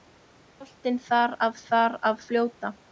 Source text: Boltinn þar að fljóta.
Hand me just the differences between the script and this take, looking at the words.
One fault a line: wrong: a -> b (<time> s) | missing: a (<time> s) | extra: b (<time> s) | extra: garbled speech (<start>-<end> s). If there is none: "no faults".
extra: þar að (1.7 s)